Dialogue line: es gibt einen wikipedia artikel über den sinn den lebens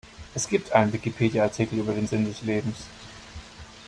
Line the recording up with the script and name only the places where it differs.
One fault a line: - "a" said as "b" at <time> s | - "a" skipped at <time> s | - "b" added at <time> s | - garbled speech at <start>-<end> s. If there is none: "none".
- "den" said as "des" at 2.2 s